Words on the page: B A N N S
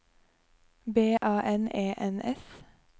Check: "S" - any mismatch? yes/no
no